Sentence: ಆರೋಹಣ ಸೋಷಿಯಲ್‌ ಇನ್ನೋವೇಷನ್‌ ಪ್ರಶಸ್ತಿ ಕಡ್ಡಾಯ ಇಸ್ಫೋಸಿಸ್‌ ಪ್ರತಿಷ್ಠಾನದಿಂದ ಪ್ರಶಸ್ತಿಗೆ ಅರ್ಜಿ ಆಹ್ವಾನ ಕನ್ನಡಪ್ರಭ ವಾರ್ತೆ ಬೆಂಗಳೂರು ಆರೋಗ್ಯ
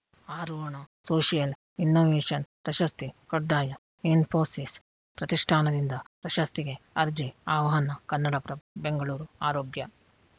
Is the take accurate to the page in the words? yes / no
no